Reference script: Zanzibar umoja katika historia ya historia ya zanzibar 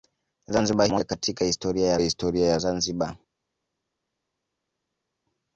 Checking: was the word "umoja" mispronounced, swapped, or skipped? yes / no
no